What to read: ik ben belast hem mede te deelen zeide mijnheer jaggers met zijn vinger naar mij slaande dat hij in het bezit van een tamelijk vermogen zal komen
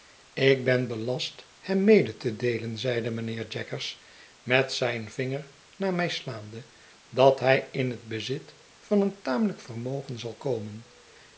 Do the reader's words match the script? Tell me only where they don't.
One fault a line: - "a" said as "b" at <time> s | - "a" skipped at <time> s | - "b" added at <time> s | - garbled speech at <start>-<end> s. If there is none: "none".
none